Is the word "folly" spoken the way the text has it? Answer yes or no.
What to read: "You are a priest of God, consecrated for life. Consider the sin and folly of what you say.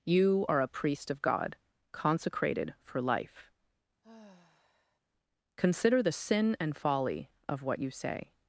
yes